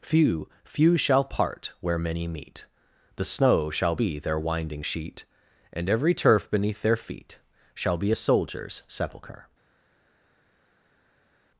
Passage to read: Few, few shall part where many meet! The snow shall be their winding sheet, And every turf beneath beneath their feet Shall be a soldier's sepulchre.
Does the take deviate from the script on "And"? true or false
false